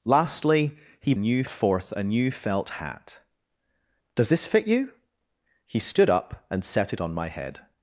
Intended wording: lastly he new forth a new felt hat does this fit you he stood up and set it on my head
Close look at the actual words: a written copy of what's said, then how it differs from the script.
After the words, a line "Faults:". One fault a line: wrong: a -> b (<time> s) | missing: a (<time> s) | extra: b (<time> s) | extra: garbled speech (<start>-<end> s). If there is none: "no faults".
lastly he new forth a new felt hat does this fit you he stood up and set it on my head
Faults:
no faults